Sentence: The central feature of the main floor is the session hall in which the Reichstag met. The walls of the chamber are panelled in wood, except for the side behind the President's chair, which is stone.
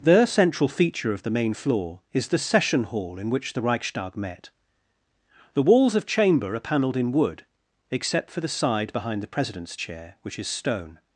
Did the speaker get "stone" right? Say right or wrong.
right